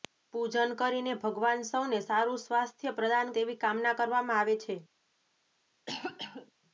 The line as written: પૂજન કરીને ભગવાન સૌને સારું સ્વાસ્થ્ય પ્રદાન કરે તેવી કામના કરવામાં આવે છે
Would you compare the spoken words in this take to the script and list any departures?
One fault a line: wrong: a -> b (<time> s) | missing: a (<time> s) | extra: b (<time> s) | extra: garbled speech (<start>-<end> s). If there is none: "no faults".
missing: કરે (3.3 s)